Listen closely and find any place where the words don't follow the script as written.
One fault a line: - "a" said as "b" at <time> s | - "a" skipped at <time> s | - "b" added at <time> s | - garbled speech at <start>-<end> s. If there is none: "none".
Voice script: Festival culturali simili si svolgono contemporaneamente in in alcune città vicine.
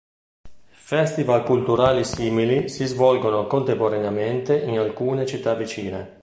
- "in" skipped at 4.8 s